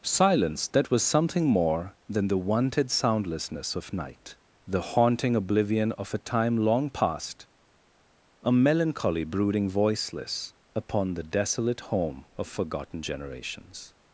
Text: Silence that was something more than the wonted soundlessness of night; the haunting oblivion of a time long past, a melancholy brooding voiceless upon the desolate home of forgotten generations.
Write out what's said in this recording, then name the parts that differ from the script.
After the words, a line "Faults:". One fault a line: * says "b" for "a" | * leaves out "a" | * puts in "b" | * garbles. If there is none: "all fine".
Silence that was something more than the wonted soundlessness of night; the haunting oblivion of a time long past, a melancholy brooding voiceless upon the desolate home of forgotten generations.
Faults:
all fine